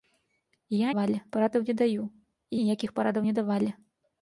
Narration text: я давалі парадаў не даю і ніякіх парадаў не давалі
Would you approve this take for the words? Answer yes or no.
yes